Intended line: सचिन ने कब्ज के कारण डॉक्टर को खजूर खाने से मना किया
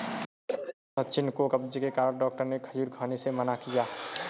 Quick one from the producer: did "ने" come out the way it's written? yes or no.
no